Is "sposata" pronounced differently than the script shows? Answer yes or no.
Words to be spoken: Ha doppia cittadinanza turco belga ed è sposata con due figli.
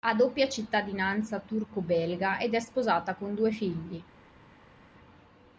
no